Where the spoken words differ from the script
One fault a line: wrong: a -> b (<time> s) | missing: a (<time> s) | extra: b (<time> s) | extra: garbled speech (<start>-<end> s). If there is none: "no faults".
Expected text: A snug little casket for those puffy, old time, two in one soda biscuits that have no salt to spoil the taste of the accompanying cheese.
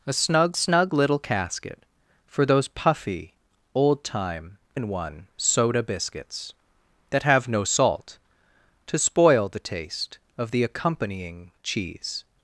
extra: snug (0.5 s)
missing: two (4.6 s)